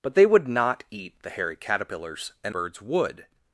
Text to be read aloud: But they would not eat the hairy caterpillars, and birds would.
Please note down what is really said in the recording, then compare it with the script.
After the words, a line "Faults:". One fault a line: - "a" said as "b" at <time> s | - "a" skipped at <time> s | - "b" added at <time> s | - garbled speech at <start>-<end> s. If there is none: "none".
But they would not eat the hairy caterpillars, and birds would.
Faults:
none